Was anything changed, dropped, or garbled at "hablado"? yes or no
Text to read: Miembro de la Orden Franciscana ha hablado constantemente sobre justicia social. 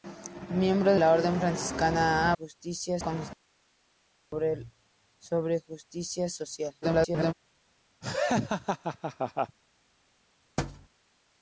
yes